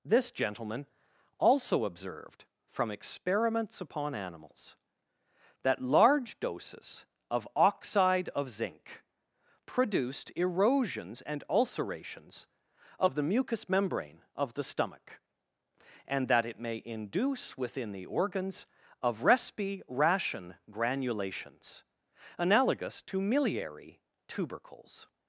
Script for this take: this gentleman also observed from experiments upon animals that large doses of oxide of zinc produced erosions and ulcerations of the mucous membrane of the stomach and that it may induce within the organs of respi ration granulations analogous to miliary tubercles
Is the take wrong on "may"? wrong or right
right